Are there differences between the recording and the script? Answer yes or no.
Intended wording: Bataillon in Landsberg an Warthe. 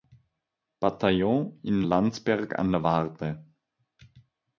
yes